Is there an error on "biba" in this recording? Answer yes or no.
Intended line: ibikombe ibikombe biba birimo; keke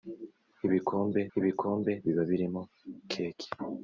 no